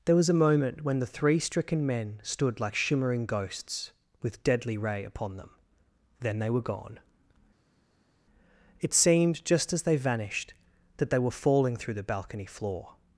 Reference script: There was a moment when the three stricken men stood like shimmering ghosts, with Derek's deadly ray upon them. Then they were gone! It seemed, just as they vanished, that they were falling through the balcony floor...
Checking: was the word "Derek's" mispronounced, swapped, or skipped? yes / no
yes